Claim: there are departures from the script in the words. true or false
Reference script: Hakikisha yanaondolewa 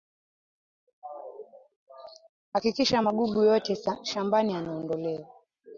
true